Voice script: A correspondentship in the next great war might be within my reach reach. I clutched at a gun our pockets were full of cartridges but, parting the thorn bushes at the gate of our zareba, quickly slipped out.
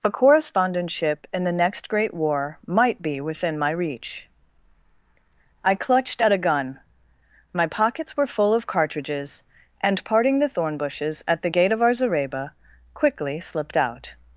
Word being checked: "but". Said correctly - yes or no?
no